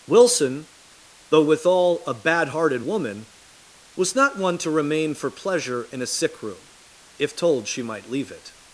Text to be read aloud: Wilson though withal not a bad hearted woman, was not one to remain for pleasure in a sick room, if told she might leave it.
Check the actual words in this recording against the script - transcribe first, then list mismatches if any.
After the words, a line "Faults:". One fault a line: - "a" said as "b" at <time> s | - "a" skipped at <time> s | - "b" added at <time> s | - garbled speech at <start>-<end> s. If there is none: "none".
Wilson though withal a bad hearted woman, was not one to remain for pleasure in a sick room, if told she might leave it.
Faults:
- "not" skipped at 2.0 s